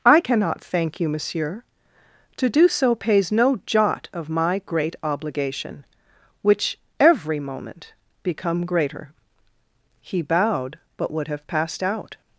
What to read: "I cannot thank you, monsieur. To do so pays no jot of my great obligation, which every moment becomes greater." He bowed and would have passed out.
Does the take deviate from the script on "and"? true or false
true